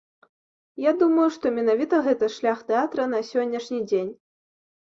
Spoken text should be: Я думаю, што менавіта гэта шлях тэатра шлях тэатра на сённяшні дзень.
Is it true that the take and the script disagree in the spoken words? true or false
true